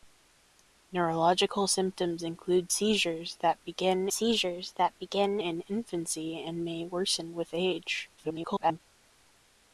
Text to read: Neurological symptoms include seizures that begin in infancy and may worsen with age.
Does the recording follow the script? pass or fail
fail